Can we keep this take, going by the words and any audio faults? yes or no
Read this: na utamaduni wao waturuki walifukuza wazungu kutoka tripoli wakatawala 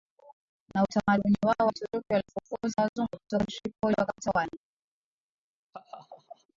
no